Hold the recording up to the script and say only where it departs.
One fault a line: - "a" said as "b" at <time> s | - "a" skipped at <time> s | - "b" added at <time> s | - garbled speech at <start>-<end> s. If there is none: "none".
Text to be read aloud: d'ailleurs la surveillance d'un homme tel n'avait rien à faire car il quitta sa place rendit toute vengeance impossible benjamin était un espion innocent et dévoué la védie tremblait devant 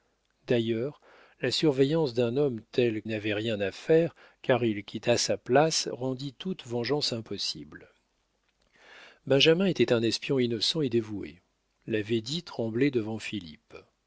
none